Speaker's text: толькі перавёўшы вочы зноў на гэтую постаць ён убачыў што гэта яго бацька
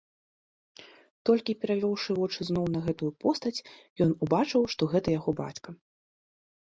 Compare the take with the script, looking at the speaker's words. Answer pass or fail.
pass